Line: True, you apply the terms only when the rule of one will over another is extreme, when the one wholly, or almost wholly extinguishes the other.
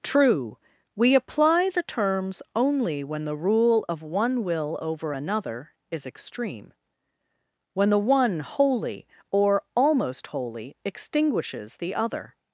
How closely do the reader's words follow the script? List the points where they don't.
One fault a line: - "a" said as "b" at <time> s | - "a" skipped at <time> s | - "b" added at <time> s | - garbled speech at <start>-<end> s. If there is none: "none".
- "you" said as "we" at 0.9 s